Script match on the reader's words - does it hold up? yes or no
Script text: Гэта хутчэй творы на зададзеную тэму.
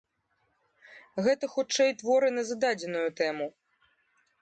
yes